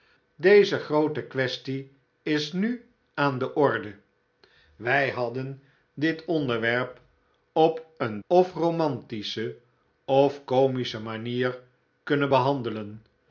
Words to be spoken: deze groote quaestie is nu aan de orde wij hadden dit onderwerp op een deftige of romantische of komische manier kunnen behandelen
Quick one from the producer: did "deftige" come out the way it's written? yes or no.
no